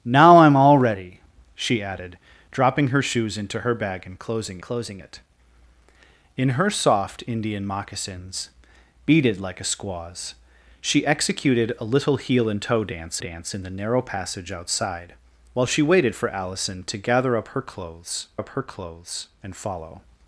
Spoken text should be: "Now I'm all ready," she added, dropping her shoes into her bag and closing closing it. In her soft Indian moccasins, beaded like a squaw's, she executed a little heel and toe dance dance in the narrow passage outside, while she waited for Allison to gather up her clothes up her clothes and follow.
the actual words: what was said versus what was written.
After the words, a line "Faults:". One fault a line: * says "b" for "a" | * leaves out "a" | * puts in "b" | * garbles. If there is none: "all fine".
"Now I'm all ready," she added, dropping her shoes into her bag and closing closing it. In her soft Indian moccasins, beaded like a squaw's, she executed a little heel and toe dance dance in the narrow passage outside, while she waited for Allison to gather up her clothes up her clothes and follow.
Faults:
all fine